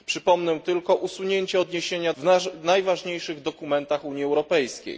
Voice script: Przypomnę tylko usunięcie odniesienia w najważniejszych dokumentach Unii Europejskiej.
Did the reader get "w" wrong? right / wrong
right